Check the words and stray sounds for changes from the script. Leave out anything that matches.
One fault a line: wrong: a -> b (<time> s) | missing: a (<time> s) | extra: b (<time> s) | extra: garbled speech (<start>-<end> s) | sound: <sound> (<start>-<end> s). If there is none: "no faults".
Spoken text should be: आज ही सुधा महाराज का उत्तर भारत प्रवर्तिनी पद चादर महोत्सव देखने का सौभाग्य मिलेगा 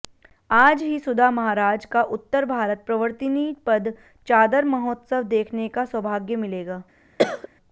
sound: cough (7.2-7.5 s)